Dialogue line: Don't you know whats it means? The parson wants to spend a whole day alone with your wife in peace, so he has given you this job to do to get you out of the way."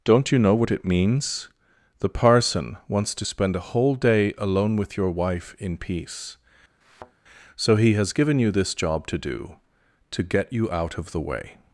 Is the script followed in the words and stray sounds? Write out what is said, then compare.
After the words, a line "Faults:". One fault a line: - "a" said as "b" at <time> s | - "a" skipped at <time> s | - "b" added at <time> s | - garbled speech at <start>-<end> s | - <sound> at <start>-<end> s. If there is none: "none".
Don't you know what it means? The parson wants to spend a whole day alone with your wife in peace, so he has given you this job to do to get you out of the way."
Faults:
- "whats" said as "what" at 0.6 s
- thud at 6.8-7.1 s